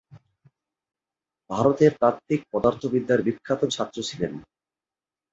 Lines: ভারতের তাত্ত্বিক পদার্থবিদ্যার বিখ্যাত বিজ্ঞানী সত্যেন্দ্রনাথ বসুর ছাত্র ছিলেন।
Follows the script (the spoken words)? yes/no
no